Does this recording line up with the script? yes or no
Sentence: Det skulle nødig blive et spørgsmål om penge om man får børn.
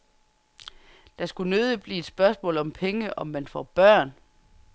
yes